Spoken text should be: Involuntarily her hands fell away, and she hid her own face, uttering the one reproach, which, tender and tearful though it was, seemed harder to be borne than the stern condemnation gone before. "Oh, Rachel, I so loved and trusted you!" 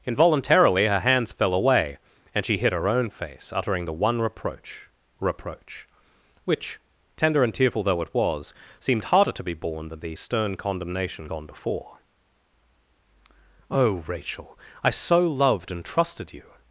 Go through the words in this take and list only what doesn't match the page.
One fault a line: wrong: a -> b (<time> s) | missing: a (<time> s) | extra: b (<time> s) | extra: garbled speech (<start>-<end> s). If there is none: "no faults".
extra: reproach (5.2 s)